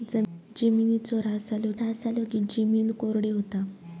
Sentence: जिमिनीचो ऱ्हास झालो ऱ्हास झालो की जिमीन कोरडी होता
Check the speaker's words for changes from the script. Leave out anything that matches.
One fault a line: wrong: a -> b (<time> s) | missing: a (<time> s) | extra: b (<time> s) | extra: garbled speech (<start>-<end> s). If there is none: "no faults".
no faults